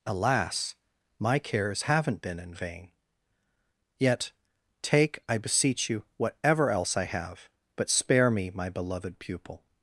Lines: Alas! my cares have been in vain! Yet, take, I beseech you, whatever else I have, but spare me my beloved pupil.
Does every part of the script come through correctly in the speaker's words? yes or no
no